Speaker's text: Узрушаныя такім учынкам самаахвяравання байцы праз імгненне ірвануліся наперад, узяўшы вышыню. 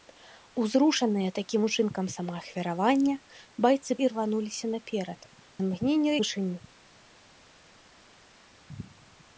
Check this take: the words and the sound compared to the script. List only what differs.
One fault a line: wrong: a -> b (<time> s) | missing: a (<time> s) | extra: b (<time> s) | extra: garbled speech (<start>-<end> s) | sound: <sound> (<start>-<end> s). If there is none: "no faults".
missing: праз імгненне (3.9 s)
wrong: узяўшы -> імгненне (5.7 s)